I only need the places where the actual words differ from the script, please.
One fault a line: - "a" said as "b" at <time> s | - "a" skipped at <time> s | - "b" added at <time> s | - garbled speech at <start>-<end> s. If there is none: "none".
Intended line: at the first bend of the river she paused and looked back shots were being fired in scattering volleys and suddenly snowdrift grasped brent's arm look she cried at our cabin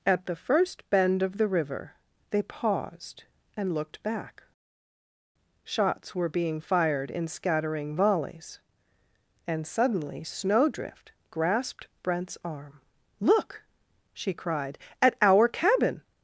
- "she" said as "they" at 2.3 s